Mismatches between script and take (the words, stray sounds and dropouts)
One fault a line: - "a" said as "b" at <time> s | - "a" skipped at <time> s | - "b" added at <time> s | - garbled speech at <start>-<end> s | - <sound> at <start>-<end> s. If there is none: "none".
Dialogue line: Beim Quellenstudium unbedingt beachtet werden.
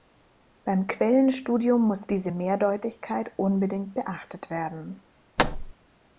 - "muss diese Mehrdeutigkeit" added at 1.8 s
- thud at 5.4-5.7 s